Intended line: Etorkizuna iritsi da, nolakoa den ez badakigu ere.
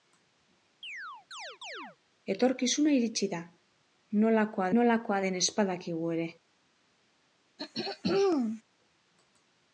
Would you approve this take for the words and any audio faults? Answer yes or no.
no